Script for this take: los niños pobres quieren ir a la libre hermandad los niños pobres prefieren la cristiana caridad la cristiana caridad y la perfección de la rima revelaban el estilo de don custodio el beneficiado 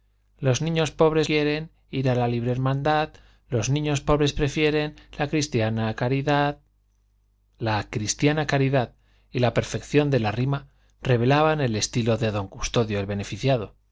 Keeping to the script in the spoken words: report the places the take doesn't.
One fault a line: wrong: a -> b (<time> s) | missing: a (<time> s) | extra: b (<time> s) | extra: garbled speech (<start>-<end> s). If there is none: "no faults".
no faults